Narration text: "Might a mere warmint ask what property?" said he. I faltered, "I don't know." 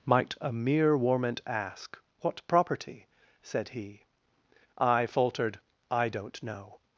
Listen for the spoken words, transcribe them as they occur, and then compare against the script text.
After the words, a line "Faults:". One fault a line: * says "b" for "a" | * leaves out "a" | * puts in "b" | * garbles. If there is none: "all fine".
"Might a mere warmint ask what property?" said he. I faltered, "I don't know."
Faults:
all fine